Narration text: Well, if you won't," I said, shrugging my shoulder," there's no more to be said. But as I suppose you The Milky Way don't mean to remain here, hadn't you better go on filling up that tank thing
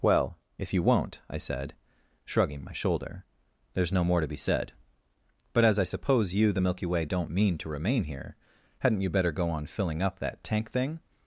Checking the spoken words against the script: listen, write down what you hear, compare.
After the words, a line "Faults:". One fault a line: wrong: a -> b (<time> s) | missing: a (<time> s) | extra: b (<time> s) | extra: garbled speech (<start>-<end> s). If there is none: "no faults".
Well, if you won't," I said, shrugging my shoulder," there's no more to be said. But as I suppose you The Milky Way don't mean to remain here, hadn't you better go on filling up that tank thing
Faults:
no faults